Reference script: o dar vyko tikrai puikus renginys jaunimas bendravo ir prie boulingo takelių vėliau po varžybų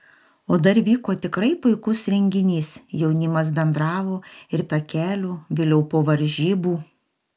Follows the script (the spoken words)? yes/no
no